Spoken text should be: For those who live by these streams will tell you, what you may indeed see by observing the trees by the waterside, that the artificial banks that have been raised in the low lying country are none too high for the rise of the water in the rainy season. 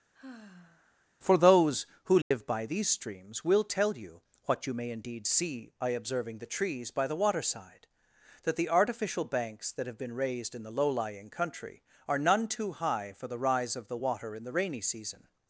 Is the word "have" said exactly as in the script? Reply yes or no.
yes